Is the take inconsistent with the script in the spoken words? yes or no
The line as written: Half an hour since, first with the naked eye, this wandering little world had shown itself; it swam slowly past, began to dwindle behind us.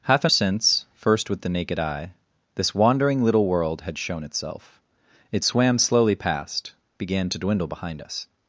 yes